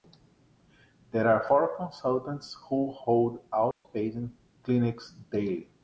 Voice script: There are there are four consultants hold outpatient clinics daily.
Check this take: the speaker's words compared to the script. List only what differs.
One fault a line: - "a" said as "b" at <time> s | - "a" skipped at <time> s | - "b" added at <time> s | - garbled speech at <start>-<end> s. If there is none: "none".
- "there are" skipped at 1.5 s
- "who" added at 2.7 s